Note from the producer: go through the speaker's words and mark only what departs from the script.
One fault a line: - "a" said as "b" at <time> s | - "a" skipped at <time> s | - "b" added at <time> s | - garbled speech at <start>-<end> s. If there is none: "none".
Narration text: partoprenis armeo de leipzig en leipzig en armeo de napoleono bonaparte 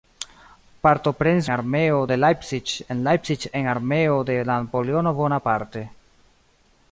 none